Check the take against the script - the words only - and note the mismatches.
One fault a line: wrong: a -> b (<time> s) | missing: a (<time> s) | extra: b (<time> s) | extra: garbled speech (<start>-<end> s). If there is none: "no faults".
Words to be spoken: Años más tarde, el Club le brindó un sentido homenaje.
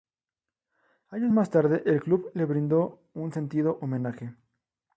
no faults